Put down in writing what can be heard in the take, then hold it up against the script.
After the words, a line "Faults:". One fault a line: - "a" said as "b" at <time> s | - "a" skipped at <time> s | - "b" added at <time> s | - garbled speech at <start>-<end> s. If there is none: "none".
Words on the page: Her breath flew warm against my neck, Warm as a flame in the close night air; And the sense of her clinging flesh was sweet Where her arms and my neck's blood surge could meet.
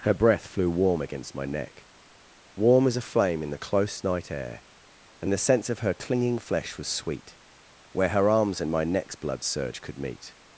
Her breath flew warm against my neck, Warm as a flame in the close night air; And the sense of her clinging flesh was sweet Where her arms and my neck's blood surge could meet.
Faults:
none